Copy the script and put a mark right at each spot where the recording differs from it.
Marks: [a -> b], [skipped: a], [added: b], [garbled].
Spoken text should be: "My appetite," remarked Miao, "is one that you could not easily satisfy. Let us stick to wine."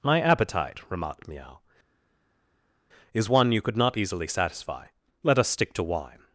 "My appetite," remarked Miao, "is one [skipped: that] you could not easily satisfy. Let us stick to wine."